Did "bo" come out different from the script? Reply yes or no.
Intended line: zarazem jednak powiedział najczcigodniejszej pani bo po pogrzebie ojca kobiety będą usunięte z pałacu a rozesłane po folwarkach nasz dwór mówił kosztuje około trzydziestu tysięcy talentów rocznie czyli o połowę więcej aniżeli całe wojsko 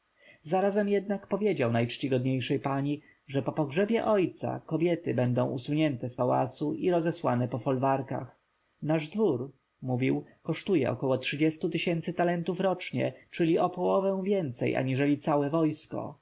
yes